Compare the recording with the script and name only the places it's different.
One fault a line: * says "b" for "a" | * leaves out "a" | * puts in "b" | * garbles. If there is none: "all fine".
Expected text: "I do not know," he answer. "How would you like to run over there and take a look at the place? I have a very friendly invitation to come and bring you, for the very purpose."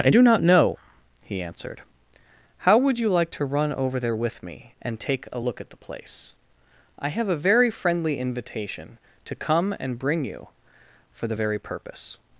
* says "answered" for "answer"
* puts in "with me"